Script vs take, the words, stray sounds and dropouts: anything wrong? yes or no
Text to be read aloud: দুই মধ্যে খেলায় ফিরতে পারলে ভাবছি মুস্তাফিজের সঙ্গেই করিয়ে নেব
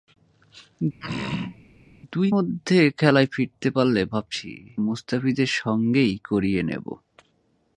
yes